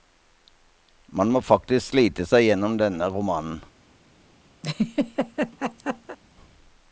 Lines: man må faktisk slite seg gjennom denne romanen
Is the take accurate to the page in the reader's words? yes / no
yes